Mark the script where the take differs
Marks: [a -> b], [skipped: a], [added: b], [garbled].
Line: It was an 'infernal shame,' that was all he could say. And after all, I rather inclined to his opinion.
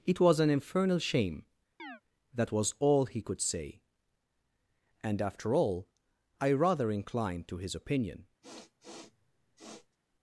It was an 'infernal shame,' that was all he could say. And after all, I rather inclined to his opinion.